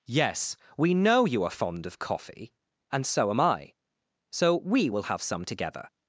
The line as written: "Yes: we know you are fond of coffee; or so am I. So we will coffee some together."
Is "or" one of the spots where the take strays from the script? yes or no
yes